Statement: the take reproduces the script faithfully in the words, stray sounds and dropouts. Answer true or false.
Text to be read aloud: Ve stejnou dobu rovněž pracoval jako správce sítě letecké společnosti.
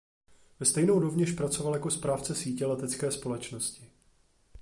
false